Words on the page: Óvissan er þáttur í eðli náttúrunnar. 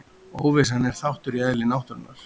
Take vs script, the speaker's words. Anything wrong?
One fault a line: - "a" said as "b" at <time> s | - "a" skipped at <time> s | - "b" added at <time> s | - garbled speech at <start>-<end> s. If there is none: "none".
none